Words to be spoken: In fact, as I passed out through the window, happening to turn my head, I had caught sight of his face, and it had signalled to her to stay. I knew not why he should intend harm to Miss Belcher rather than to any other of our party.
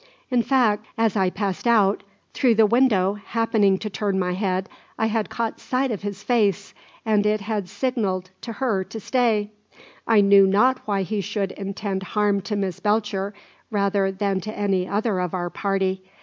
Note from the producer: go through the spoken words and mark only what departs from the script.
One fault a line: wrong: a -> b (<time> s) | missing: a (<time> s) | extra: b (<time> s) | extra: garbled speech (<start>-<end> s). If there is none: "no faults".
no faults